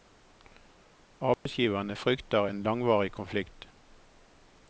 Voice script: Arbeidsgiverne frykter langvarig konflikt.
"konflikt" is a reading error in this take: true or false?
false